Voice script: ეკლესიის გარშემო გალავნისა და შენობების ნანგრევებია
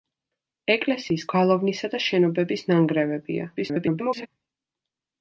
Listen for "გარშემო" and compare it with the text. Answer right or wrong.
wrong